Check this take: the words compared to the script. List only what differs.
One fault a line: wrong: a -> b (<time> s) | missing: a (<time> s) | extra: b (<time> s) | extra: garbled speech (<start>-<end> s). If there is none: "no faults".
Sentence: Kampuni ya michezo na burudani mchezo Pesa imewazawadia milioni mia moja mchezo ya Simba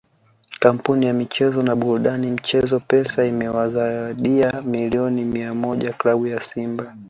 wrong: mchezo -> klabu (5.9 s)